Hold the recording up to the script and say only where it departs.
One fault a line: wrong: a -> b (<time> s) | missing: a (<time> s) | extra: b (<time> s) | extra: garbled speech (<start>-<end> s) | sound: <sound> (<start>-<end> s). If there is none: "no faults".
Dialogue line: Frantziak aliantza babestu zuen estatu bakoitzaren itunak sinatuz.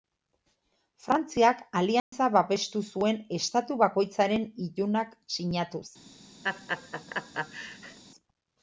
sound: dropout (2.0-2.1 s)
sound: laugh (6.4-8.0 s)